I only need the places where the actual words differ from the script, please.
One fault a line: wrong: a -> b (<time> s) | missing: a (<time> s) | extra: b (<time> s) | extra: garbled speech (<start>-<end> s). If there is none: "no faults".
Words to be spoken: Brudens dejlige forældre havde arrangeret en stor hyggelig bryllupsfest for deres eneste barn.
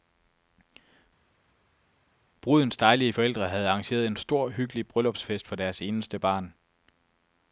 no faults